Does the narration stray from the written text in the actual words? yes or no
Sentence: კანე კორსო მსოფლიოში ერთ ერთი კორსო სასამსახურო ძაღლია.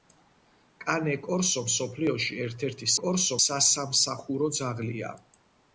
no